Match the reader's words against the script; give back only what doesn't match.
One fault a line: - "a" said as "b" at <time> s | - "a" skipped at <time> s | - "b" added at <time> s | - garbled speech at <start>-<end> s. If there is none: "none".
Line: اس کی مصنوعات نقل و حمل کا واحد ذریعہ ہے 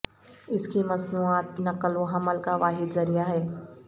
none